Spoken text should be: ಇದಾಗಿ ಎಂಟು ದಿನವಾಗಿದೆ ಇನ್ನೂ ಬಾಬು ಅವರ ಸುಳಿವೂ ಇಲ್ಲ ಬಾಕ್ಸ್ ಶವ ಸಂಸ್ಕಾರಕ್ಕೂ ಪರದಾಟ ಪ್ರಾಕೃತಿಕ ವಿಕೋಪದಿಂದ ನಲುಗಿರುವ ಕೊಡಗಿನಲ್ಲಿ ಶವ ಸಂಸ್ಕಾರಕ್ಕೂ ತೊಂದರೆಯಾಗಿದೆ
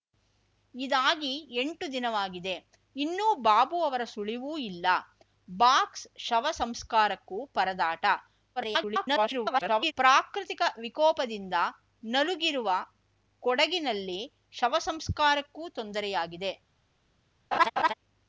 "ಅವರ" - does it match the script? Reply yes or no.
yes